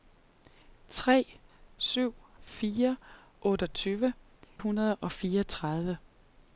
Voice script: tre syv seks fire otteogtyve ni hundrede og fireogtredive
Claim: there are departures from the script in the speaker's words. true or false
true